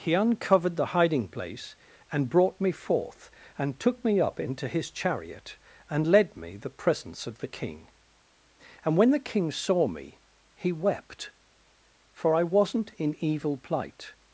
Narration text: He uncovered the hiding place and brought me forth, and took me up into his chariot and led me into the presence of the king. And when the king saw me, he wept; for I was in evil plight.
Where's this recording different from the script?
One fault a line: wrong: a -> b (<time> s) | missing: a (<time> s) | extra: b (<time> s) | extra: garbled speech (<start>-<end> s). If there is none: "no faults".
missing: into (6.6 s)
wrong: was -> wasn't (12.4 s)